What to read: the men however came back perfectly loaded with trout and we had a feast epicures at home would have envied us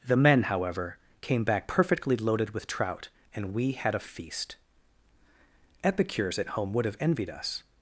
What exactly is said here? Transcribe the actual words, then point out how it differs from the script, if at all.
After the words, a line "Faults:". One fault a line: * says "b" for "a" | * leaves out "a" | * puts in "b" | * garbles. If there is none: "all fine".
the men however came back perfectly loaded with trout and we had a feast epicures at home would have envied us
Faults:
all fine